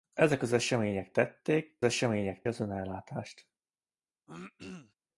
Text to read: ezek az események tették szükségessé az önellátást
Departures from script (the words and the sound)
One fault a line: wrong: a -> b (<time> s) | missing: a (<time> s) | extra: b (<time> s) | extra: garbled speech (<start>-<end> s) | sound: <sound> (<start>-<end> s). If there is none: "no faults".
wrong: szükségessé -> események (1.8 s)
sound: throat clearing (4.3-4.9 s)